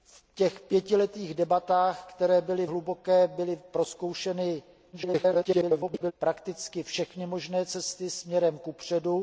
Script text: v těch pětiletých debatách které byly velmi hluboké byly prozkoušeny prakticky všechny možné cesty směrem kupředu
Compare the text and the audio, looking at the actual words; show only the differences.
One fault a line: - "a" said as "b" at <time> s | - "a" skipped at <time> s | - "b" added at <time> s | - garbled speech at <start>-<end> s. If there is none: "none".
- "velmi" skipped at 2.6 s
- garbled speech at 4.9-6.1 s